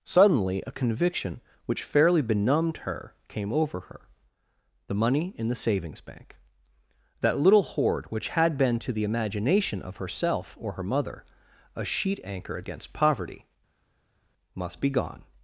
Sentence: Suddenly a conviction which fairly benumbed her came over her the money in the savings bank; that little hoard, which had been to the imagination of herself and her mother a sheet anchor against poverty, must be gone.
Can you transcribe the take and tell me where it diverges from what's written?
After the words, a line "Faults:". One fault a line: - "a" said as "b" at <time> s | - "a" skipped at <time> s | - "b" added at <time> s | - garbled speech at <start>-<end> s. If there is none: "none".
Suddenly a conviction which fairly benumbed her came over her the money in the savings bank; that little hoard, which had been to the imagination of herself or her mother a sheet anchor against poverty, must be gone.
Faults:
- "and" said as "or" at 10.6 s